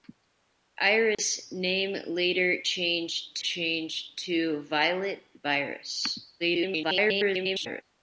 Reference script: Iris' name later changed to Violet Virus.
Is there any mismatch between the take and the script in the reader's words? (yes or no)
yes